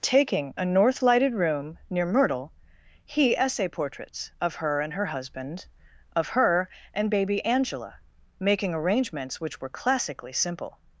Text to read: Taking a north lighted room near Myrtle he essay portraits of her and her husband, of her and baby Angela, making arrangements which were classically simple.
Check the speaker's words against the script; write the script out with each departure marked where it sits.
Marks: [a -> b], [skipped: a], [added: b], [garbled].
Taking a north lighted room near Myrtle he essay portraits of her and her husband, of her and baby Angela, making arrangements which were classically simple.